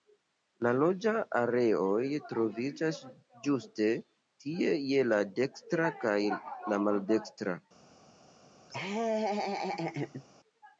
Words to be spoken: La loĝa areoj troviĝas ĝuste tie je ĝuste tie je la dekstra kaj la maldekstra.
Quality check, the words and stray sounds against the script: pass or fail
fail